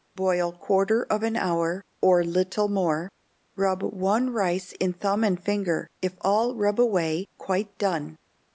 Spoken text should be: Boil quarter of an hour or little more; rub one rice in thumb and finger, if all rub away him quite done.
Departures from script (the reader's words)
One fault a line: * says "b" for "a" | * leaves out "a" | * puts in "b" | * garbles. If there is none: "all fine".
* leaves out "him"